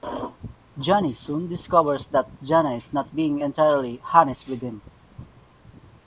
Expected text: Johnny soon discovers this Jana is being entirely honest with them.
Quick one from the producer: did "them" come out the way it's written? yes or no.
no